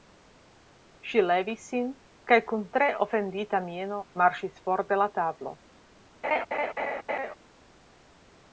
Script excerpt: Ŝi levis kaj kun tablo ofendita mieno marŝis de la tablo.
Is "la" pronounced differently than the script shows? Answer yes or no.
no